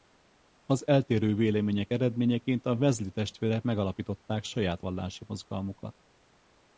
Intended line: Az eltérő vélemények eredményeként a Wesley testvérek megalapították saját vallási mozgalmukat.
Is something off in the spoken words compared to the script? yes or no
no